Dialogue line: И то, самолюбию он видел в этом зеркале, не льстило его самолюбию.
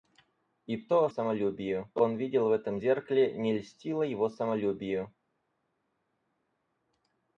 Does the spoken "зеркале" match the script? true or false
true